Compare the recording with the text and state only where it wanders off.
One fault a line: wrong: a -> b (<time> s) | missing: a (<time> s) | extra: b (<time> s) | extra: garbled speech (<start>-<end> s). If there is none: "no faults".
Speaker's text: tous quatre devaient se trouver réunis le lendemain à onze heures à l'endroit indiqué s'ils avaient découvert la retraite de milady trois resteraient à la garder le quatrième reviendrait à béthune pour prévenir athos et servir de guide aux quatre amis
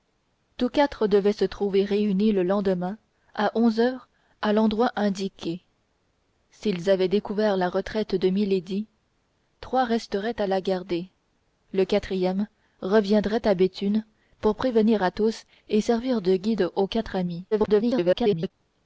extra: garbled speech (17.5-18.5 s)